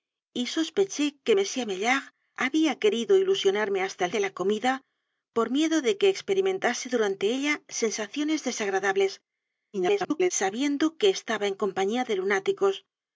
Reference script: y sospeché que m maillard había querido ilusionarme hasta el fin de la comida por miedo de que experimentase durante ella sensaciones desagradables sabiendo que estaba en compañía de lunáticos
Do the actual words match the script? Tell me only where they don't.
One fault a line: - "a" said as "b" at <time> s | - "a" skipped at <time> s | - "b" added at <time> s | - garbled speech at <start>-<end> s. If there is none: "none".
- "fin" skipped at 4.1 s
- garbled speech at 9.7-10.3 s